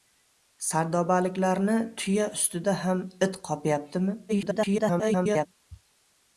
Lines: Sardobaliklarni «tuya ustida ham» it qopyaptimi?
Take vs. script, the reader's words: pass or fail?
fail